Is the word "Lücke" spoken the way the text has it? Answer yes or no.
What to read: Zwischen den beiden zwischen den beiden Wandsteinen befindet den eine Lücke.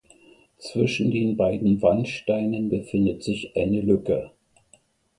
yes